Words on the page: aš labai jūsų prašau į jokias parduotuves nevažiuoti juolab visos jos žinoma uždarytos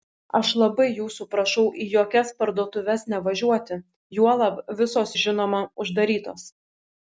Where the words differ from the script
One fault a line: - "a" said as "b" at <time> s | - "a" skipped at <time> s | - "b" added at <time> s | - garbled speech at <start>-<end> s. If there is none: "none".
- "jos" skipped at 5.1 s